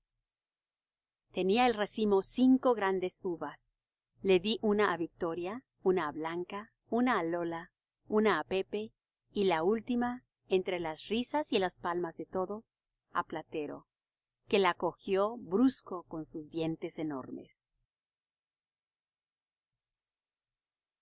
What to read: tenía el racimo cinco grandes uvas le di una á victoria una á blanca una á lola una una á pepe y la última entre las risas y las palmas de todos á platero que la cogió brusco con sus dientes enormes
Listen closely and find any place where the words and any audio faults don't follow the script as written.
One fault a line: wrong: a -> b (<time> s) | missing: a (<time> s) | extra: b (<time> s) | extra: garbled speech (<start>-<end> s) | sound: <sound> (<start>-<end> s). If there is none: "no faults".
missing: una (8.4 s)